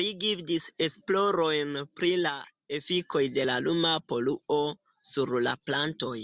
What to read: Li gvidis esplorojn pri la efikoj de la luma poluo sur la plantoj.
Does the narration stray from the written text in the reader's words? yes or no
no